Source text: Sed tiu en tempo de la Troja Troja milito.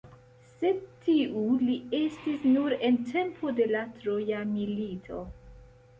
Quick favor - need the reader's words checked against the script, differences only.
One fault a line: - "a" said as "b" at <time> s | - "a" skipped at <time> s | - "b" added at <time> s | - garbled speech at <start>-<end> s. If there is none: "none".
- "li estis nur" added at 1.6 s
- "Troja" skipped at 4.4 s